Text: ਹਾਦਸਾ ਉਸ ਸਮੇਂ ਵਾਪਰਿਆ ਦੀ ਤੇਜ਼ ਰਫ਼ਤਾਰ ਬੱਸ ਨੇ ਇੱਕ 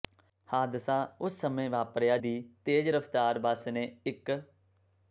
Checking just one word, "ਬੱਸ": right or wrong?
right